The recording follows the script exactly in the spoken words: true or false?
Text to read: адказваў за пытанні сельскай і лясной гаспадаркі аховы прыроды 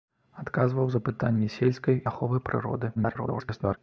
false